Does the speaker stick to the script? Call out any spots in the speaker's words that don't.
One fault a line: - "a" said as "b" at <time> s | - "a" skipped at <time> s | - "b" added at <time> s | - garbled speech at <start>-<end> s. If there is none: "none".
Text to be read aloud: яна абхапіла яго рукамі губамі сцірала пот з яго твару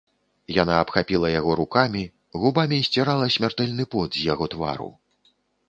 - "смяртэльны" added at 3.4 s